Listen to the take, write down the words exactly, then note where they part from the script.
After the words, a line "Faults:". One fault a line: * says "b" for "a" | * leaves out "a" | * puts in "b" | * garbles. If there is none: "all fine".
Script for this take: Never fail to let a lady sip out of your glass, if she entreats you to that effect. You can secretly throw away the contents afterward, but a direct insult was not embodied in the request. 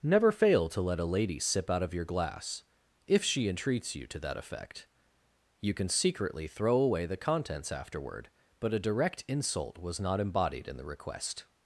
Never fail to let a lady sip out of your glass, if she entreats you to that effect. You can secretly throw away the contents afterward, but a direct insult was not embodied in the request.
Faults:
all fine